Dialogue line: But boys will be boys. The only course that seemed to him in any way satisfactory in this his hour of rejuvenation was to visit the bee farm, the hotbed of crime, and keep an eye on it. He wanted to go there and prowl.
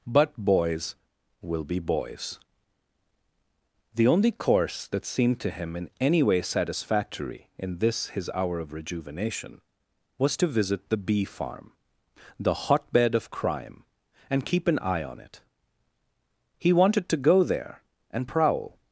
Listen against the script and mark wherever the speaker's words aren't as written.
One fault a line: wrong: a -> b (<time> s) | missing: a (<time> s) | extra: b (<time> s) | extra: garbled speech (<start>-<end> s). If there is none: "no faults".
no faults